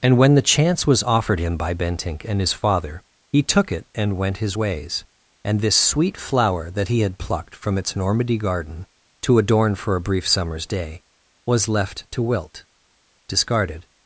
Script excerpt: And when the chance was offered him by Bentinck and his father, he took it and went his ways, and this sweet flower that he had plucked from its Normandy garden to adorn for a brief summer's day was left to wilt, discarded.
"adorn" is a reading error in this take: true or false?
false